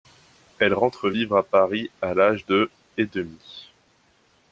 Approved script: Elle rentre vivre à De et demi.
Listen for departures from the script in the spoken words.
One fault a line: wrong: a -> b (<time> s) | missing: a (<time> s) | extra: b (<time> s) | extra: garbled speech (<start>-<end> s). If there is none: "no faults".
extra: Paris à l'âge (1.4 s)